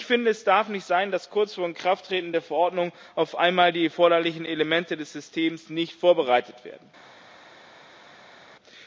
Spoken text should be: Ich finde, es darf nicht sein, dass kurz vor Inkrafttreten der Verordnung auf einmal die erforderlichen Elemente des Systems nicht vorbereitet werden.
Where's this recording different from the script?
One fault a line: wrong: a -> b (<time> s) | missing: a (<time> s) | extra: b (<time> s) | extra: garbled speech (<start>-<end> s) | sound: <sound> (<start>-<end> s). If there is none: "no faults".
no faults